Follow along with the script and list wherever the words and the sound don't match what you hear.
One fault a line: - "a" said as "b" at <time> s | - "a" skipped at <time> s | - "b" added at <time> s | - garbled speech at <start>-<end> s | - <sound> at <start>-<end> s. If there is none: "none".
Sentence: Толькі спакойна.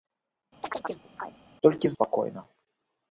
- chirp at 0.6-1.4 s